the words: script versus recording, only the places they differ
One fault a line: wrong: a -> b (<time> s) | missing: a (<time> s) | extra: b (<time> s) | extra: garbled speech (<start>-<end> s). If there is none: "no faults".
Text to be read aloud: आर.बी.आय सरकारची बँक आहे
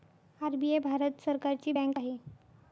extra: भारत (0.8 s)